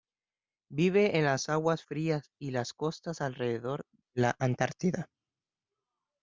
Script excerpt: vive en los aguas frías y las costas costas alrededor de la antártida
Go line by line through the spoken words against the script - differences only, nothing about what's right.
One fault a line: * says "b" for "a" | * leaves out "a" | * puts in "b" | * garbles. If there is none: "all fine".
* says "las" for "los"
* leaves out "costas"